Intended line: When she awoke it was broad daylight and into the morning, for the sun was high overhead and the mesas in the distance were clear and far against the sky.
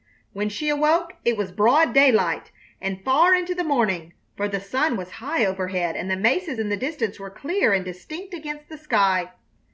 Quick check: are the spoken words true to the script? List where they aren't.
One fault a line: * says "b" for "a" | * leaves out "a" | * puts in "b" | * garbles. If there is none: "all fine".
* puts in "far"
* says "distinct" for "far"